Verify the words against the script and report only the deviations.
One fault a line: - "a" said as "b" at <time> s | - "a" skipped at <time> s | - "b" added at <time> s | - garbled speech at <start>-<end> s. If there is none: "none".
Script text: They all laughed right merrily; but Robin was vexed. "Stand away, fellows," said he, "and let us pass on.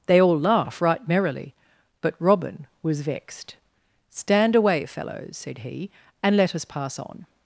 - "laughed" said as "laugh" at 0.4 s